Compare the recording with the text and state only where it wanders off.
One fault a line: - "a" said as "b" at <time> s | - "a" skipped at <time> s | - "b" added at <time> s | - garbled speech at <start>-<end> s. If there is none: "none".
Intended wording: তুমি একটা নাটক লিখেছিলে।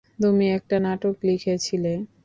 none